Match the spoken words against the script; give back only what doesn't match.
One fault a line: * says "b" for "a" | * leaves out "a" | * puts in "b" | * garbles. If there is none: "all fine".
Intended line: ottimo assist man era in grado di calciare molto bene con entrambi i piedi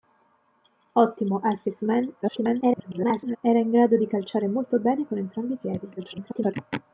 * garbles
* garbles